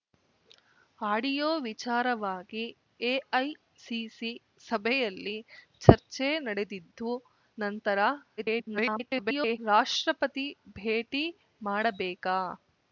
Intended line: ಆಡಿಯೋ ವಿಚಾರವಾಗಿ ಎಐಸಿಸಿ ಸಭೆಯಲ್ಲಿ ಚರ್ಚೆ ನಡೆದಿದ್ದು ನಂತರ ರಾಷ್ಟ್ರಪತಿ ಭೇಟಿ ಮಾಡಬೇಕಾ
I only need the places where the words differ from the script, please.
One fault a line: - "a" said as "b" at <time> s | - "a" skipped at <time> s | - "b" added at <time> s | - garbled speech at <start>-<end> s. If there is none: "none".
- garbled speech at 8.4-9.6 s